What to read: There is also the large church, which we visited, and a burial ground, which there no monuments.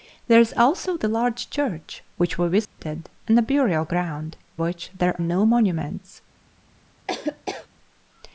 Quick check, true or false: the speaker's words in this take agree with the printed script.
true